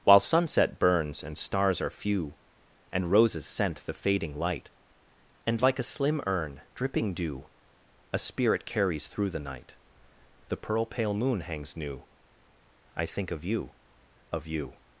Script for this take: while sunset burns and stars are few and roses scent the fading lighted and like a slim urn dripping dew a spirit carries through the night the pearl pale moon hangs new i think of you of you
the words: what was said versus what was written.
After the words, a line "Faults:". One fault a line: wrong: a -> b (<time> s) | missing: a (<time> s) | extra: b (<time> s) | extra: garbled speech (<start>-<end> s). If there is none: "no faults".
while sunset burns and stars are few and roses scent the fading light and like a slim urn dripping dew a spirit carries through the night the pearl pale moon hangs new i think of you of you
Faults:
wrong: lighted -> light (4.3 s)